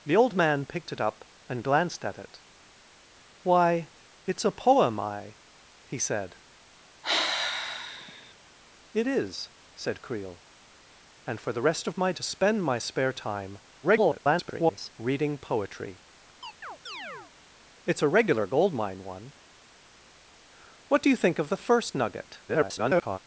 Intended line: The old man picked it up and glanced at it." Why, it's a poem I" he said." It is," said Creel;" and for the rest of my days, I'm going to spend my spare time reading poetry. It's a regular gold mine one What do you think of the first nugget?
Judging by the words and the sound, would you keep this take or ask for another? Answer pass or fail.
fail